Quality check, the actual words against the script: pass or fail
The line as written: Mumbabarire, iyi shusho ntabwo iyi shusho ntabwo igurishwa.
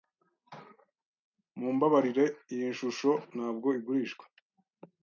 fail